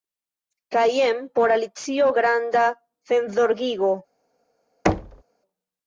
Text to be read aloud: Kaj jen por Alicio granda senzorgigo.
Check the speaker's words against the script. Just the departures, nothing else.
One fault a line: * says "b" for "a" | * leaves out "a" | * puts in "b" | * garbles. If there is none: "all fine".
all fine